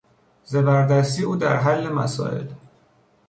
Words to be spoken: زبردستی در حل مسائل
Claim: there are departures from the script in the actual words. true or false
true